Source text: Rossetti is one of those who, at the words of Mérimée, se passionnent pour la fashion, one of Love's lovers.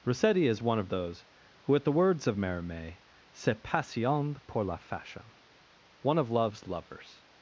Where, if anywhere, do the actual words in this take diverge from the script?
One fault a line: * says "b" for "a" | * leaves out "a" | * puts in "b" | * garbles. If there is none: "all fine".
all fine